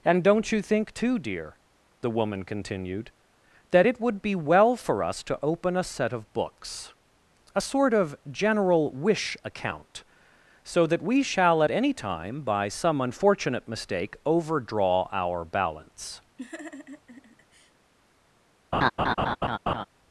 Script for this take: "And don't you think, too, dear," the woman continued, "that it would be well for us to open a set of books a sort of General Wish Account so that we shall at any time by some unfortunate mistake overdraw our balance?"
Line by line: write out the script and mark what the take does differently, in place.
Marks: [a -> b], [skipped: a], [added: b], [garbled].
"And don't you think, too, dear," the woman continued, "that it would be well for us to open a set of books a sort of General Wish Account so that we shall at any time by some unfortunate mistake overdraw our balance?"